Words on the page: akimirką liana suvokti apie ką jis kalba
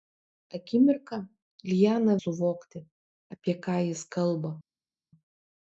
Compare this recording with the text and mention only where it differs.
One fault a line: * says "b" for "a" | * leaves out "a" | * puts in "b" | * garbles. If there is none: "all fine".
all fine